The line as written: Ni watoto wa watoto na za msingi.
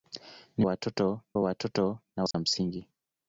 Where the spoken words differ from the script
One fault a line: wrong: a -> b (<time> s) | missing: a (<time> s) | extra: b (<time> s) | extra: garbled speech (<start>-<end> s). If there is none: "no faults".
no faults